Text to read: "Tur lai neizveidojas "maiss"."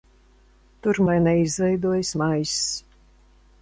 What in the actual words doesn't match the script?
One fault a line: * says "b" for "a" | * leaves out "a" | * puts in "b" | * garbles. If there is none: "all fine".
all fine